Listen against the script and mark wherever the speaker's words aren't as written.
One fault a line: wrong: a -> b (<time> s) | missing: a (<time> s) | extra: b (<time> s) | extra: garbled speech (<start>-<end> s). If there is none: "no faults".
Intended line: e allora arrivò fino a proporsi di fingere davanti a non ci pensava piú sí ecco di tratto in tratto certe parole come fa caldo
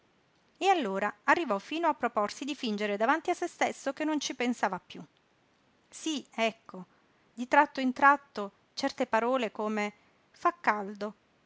extra: se stesso che (3.3 s)